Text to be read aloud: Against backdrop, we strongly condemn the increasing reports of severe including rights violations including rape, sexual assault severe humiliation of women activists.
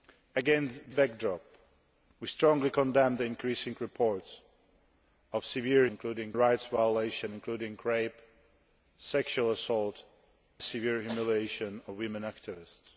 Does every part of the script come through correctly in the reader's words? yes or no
yes